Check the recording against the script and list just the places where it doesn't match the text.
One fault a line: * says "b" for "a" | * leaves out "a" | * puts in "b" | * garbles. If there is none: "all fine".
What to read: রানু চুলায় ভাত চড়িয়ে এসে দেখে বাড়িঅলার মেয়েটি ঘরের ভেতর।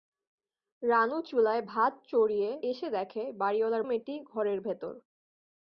all fine